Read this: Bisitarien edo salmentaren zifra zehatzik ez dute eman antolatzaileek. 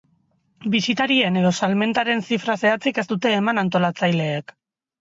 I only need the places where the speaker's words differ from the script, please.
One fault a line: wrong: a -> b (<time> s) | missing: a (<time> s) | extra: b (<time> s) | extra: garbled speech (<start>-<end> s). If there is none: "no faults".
no faults